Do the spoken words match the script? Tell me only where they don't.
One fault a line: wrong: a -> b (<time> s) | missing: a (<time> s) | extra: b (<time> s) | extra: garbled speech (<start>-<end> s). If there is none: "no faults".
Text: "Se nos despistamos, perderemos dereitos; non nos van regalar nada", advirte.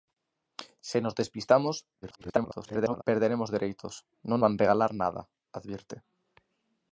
extra: garbled speech (2.0-3.0 s)
missing: nos (4.4 s)